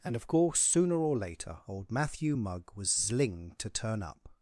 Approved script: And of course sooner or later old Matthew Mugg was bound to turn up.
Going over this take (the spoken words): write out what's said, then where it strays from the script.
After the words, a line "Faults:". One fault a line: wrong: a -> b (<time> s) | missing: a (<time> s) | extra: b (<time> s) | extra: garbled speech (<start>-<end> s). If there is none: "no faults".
And of course sooner or later old Matthew Mugg was zling to turn up.
Faults:
wrong: bound -> zling (2.9 s)